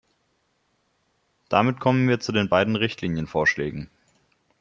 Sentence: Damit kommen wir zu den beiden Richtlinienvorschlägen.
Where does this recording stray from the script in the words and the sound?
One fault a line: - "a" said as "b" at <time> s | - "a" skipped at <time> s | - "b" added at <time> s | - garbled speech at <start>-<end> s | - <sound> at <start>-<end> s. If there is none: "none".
none